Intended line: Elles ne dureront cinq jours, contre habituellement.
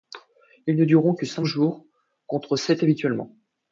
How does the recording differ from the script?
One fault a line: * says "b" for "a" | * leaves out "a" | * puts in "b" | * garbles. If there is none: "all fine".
* says "Ils" for "Elles"
* puts in "que"
* puts in "sept"